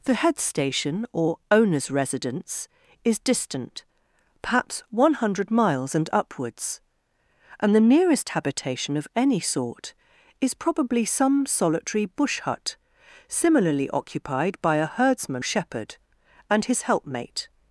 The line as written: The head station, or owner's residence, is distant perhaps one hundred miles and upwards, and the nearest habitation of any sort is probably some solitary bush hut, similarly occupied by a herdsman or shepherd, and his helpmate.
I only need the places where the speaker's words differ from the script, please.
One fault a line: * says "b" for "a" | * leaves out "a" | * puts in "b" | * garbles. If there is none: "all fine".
* leaves out "or"